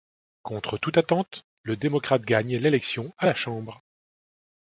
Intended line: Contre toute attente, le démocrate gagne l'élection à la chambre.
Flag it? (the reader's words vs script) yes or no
no